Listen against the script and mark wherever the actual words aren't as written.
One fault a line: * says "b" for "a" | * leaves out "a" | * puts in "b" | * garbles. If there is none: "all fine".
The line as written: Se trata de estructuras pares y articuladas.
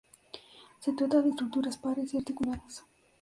all fine